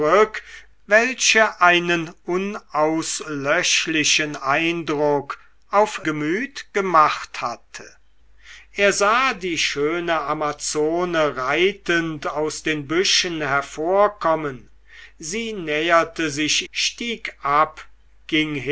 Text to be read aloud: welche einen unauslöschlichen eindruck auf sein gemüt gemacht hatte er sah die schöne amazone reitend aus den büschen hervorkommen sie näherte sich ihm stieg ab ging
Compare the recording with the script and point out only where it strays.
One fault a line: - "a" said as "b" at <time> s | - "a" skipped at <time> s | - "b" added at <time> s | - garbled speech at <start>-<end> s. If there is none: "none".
- "sein" skipped at 6.0 s
- "ihm" skipped at 16.7 s